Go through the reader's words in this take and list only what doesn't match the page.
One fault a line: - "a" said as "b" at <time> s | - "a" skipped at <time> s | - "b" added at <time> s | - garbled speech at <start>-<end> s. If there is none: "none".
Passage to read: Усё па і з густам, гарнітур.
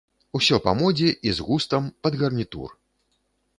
- "модзе" added at 0.8 s
- "пад" added at 2.1 s